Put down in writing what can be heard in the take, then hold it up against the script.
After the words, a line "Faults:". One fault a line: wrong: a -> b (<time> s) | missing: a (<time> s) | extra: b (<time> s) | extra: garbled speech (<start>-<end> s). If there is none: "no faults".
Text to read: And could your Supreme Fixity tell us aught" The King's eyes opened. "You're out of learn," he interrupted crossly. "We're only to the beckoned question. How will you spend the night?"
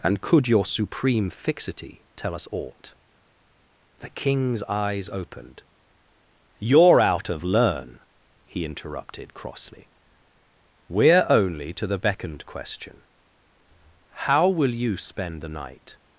And could your Supreme Fixity tell us aught" The King's eyes opened. "You're out of learn," he interrupted crossly. "We're only to the beckoned question. How will you spend the night?"
Faults:
no faults